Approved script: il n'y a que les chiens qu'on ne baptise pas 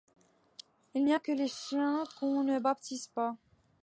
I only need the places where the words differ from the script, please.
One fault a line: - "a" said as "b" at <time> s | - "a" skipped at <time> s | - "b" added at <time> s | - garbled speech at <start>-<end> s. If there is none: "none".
none